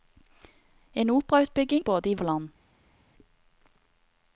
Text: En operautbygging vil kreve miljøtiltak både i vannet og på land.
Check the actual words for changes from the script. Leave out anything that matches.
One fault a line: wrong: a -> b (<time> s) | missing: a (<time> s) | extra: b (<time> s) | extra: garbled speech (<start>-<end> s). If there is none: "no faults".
missing: vil kreve miljøtiltak (1.8 s)
missing: vannet og (2.2 s)